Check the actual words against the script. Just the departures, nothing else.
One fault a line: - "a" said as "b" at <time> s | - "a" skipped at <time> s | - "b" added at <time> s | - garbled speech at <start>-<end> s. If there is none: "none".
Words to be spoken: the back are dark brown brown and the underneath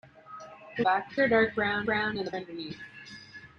none